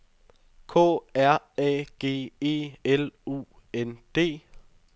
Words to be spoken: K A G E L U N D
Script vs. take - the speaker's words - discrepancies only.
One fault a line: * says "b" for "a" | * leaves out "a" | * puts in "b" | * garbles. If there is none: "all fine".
* puts in "R"